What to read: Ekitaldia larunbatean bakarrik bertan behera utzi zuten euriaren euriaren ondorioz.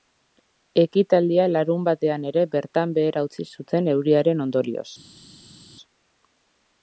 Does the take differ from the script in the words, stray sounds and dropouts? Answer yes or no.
yes